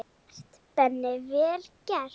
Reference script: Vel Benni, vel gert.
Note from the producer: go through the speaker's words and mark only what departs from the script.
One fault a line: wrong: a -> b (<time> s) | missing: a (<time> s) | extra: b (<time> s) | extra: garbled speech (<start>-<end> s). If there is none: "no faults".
extra: gert (0.4 s)